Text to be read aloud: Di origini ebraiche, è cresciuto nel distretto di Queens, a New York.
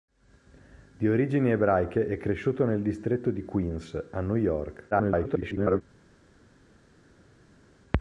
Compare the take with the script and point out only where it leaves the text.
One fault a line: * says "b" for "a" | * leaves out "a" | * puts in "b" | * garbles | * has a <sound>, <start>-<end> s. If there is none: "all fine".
* garbles